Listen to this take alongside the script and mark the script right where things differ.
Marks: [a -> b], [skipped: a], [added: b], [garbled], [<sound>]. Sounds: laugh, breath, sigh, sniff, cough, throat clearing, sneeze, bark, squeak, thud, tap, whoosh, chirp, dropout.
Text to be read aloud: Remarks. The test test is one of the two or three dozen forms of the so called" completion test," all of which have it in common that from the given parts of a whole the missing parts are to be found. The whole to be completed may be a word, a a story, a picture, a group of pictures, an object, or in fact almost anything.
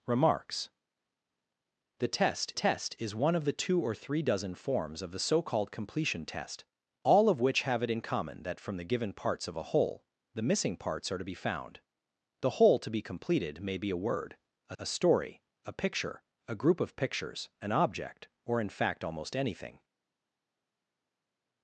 Remarks. The test test is one of the two or three dozen forms of the so called" completion test," all of which have it in common that from the given parts of a whole the missing parts are to be found. The whole to be completed may be a word, a a story, a picture, a group of pictures, an object, or in fact almost anything.